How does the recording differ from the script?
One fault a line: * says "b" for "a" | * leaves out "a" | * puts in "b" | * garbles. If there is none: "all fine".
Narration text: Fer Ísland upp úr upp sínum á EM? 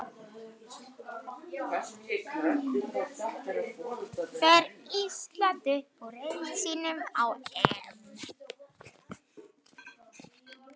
* says "riðli" for "upp"